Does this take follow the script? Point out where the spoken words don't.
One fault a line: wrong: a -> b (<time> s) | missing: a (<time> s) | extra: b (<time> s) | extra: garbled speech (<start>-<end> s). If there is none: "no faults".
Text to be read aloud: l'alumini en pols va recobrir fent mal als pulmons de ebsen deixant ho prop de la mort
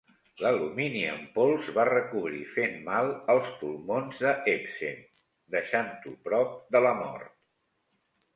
no faults